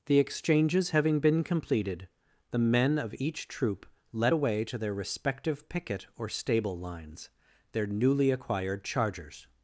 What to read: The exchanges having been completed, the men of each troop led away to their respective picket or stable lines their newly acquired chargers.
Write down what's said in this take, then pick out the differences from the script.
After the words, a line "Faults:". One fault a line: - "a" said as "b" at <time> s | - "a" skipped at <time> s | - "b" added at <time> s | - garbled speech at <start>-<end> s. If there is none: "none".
The exchanges having been completed, the men of each troop led away to their respective picket or stable lines their newly acquired chargers.
Faults:
none